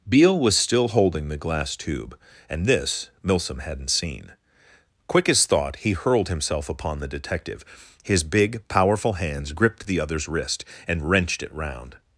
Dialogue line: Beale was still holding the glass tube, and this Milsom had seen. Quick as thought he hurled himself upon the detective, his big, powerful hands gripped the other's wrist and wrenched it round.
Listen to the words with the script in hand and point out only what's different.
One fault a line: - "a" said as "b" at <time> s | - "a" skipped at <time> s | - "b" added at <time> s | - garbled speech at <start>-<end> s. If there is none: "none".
- "had" said as "hadn't" at 3.6 s